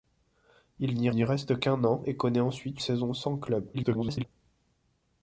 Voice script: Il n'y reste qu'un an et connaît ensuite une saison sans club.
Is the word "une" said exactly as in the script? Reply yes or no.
no